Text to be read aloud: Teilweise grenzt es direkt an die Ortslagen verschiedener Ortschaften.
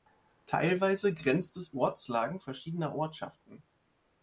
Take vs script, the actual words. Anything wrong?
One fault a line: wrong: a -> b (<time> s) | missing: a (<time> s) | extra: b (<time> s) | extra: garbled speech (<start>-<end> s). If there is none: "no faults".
missing: direkt an die (1.8 s)